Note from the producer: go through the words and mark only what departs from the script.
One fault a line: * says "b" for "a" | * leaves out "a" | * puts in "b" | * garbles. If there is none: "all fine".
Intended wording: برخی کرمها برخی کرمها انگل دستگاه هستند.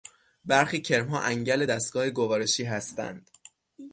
* leaves out "برخی کرمها"
* puts in "گوارشی"